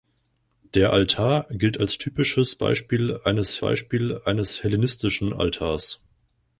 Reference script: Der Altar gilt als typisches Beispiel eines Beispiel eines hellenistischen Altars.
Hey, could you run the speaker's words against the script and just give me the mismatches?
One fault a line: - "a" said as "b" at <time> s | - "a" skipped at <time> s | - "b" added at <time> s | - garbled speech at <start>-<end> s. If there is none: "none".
none